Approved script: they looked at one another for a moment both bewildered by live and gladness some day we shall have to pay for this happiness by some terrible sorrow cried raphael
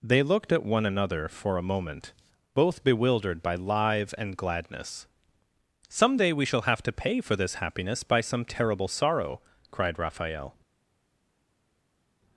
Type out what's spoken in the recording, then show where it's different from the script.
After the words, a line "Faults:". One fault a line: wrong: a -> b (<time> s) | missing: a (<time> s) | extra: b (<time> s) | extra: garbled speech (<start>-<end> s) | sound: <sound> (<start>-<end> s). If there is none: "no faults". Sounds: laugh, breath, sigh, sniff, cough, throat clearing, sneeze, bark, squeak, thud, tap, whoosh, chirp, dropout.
they looked at one another for a moment both bewildered by live and gladness some day we shall have to pay for this happiness by some terrible sorrow cried raphael
Faults:
no faults